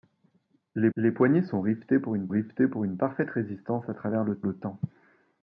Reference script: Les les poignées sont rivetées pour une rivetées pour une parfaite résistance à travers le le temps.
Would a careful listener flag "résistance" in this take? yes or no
no